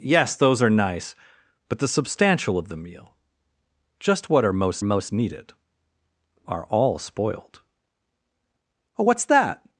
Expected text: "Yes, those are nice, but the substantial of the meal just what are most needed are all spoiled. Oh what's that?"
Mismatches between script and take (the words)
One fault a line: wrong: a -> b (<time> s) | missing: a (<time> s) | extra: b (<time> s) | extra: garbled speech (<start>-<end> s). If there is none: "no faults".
extra: most (4.8 s)